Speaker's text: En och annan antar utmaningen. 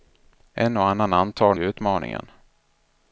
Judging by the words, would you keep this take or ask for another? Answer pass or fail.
pass